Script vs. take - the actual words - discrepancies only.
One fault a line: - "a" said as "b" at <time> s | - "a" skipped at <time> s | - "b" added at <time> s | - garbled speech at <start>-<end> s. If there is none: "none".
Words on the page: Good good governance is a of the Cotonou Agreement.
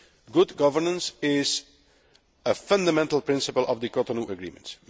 - "good" skipped at 0.6 s
- "fundamental principle" added at 2.5 s